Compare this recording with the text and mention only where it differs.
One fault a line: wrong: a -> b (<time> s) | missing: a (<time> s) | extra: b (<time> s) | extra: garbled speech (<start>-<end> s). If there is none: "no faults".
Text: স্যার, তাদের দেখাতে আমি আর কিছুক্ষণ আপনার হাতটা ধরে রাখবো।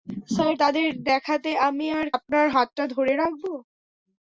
missing: কিছুক্ষণ (2.1 s)